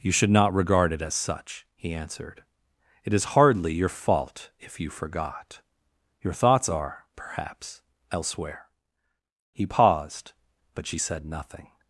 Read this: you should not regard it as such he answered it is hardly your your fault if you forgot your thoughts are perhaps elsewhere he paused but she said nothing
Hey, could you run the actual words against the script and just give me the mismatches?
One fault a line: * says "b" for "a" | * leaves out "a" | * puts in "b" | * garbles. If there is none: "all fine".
* leaves out "your"